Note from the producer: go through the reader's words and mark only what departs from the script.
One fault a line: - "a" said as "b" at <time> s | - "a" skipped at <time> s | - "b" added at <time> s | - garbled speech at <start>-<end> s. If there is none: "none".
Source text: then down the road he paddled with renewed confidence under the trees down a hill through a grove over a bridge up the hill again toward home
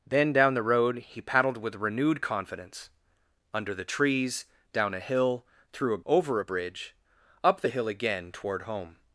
- "grove" skipped at 6.0 s